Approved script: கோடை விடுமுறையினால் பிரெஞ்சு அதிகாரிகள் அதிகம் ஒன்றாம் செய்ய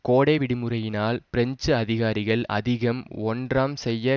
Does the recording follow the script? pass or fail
pass